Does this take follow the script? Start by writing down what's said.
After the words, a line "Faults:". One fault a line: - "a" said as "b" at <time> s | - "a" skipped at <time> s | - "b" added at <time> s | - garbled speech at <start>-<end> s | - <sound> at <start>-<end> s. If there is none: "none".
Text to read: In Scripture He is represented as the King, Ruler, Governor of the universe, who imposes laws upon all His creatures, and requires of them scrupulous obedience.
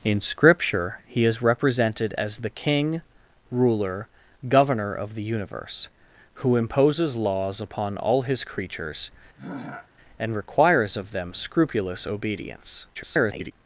In Scripture He is represented as the King, Ruler, Governor of the universe, who imposes laws upon all His creatures, and requires of them scrupulous obedience. [garbled]
Faults:
- throat clearing at 9.4-9.9 s
- garbled speech at 12.9-13.5 s